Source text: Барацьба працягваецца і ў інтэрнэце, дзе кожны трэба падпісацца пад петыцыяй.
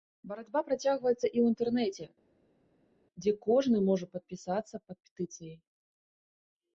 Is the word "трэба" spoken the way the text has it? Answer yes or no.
no